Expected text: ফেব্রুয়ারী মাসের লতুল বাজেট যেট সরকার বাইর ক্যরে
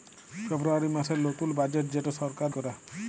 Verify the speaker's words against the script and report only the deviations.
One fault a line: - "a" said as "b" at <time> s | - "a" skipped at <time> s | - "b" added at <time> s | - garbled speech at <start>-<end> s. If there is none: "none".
- "বাইর" skipped at 2.5 s